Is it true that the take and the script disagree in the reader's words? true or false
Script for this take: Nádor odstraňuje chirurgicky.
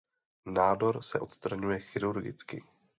true